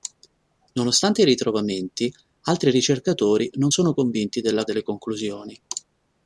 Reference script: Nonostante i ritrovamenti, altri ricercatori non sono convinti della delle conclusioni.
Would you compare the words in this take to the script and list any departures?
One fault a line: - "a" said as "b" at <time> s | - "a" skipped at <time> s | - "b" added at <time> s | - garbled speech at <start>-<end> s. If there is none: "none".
none